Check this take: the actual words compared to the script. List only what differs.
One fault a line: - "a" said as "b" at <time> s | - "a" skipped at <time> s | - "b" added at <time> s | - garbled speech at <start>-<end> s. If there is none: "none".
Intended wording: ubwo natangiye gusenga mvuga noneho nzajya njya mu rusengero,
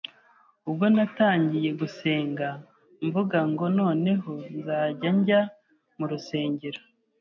- "ngo" added at 3.5 s